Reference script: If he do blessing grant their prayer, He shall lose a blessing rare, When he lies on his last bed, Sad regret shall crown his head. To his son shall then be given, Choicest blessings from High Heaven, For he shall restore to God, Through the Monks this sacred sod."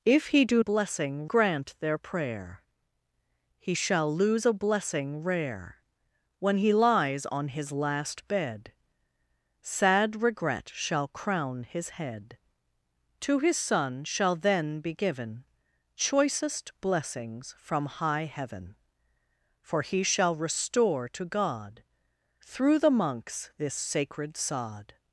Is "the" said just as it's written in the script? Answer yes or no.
yes